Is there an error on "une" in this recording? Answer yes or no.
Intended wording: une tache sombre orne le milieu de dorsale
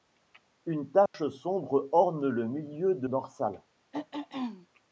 no